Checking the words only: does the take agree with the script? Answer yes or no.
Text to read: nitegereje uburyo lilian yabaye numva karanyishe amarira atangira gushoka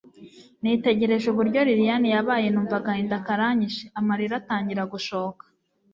no